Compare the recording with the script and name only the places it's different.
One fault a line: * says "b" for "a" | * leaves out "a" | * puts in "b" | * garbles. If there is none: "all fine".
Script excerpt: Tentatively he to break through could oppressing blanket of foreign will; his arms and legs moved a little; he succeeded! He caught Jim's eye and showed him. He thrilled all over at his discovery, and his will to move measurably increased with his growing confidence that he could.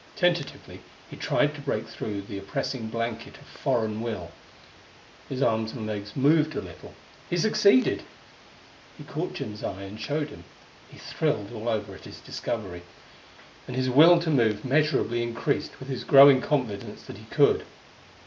* puts in "tried"
* says "the" for "could"